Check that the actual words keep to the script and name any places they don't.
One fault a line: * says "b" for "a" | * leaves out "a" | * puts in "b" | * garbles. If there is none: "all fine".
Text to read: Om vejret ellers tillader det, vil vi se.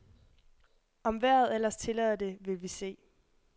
all fine